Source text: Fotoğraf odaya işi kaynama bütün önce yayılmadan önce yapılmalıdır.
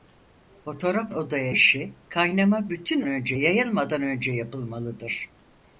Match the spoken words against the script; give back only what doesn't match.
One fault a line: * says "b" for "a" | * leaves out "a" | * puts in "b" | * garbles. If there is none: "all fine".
all fine